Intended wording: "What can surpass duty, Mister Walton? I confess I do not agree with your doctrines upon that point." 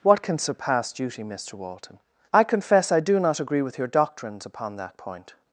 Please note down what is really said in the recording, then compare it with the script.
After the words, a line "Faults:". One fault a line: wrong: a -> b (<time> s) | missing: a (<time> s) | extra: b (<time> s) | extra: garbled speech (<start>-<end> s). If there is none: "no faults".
"What can surpass duty, Mister Walton? I confess I do not agree with your doctrines upon that point."
Faults:
no faults